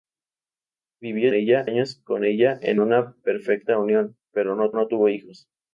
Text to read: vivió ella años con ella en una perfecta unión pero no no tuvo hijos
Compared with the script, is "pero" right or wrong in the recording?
right